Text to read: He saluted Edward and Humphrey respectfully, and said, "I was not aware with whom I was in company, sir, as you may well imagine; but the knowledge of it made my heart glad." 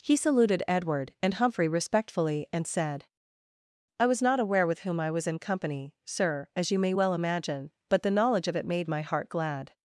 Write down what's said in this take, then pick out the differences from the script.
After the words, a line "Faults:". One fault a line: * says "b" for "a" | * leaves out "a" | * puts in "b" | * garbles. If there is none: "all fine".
He saluted Edward and Humphrey respectfully, and said, "I was not aware with whom I was in company, sir, as you may well imagine; but the knowledge of it made my heart glad."
Faults:
all fine